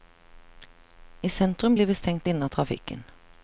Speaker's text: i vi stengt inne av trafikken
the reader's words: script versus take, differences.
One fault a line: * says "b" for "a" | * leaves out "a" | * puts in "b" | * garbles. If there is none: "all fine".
* puts in "sentrum blir"